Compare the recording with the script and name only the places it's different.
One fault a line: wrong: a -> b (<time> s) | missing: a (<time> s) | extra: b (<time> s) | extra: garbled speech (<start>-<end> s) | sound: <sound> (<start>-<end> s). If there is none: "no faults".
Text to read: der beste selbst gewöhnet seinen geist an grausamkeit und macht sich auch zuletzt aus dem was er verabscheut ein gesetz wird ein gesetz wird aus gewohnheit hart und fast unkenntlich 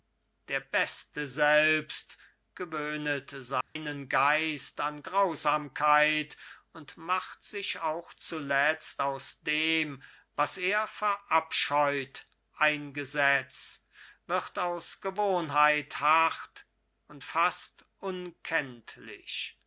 sound: dropout (3.6-3.8 s)
missing: ein gesetz wird (14.6 s)